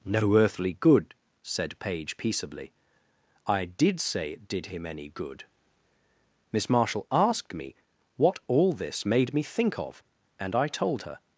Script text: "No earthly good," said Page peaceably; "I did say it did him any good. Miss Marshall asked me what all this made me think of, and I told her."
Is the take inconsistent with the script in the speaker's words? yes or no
no